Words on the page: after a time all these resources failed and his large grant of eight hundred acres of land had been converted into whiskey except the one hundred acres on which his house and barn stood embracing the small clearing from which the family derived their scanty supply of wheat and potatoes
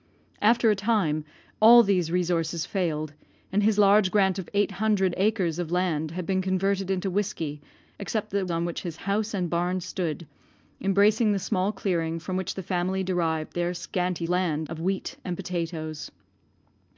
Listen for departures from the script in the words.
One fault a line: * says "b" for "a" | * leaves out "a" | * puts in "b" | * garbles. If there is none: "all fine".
* leaves out "one hundred acres"
* says "land" for "supply"